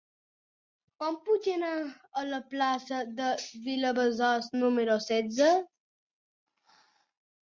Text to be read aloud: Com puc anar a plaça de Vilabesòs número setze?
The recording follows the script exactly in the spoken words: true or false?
false